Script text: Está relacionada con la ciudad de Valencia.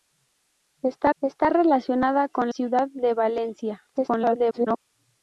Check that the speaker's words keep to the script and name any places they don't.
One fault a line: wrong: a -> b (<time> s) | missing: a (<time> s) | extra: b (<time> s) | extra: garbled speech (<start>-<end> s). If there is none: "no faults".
extra: está (1.2 s)
missing: la (2.5 s)
extra: garbled speech (3.9-4.8 s)